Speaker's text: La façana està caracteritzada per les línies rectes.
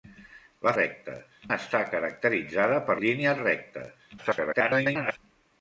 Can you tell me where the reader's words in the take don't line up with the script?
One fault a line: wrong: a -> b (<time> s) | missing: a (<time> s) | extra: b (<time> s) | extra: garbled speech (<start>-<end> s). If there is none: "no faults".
wrong: façana -> rectes (0.8 s)
missing: les (3.0 s)
extra: garbled speech (4.2-5.2 s)